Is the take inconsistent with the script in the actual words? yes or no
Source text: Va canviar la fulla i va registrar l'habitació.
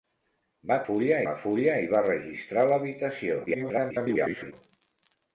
yes